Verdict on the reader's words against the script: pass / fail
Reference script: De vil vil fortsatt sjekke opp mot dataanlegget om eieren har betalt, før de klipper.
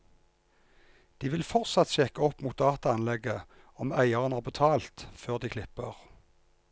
fail